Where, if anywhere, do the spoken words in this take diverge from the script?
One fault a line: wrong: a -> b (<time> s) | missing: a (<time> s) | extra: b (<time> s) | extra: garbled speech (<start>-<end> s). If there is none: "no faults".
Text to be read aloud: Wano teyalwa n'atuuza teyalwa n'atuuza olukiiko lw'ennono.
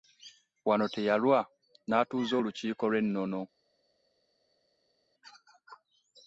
missing: teyalwa n'atuuza (2.3 s)